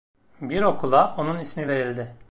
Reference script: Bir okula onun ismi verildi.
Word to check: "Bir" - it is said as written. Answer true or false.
true